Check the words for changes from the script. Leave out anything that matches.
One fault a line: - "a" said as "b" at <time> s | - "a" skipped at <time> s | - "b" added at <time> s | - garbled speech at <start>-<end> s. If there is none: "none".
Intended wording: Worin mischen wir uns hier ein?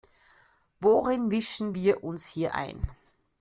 none